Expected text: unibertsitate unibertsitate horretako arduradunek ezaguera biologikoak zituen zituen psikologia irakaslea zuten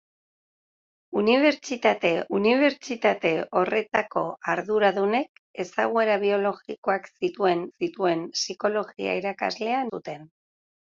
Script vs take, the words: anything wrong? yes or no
no